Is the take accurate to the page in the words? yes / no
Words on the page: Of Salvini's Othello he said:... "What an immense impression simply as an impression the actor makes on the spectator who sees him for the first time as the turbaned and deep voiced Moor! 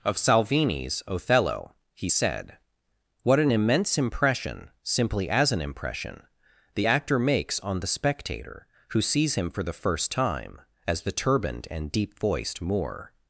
yes